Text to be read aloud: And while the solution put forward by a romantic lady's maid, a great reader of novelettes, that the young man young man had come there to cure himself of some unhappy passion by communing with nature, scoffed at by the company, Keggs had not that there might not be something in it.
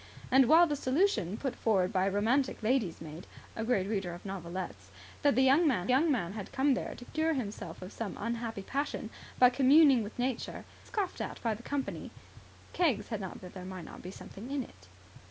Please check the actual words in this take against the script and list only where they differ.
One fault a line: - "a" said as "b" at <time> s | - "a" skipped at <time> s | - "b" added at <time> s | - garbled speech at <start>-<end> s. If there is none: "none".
none